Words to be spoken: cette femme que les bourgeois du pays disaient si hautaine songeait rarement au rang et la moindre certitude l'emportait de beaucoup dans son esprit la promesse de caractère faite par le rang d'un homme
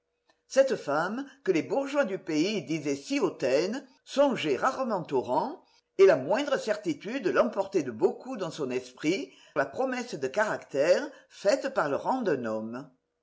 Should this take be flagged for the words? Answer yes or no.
no